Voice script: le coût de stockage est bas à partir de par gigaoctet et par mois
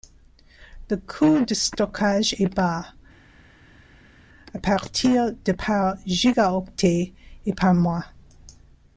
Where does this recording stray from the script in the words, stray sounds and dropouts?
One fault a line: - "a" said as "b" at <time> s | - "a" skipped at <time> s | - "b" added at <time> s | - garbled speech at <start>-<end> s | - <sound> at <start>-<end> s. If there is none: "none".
none